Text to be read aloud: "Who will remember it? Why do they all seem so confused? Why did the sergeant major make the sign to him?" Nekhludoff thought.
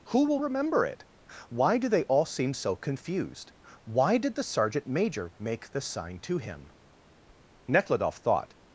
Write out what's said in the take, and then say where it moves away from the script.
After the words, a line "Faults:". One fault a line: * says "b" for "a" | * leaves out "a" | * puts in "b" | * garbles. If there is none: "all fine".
"Who will remember it? Why do they all seem so confused? Why did the sergeant major make the sign to him?" Nekhludoff thought.
Faults:
all fine